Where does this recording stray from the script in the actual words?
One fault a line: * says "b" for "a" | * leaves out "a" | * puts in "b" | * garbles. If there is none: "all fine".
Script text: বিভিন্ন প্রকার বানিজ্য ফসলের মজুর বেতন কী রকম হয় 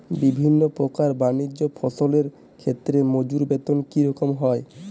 * puts in "ক্ষেত্রে"